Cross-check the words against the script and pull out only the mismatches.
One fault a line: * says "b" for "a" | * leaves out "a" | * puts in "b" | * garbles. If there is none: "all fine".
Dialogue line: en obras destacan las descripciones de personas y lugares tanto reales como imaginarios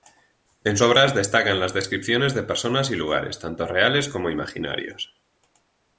all fine